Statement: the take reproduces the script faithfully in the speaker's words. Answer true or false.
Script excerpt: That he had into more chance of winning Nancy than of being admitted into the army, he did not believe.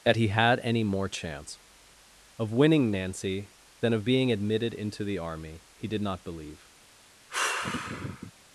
false